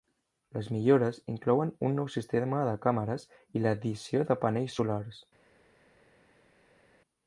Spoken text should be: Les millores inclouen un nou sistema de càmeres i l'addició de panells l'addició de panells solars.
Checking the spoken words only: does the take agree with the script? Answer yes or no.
no